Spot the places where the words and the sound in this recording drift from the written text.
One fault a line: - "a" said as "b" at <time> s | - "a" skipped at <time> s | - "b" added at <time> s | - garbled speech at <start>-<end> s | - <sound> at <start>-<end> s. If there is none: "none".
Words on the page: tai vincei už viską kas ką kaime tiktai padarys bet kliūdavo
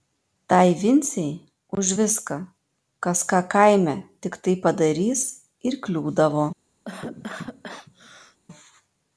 - "bet" said as "ir" at 5.7 s
- cough at 6.8-8.4 s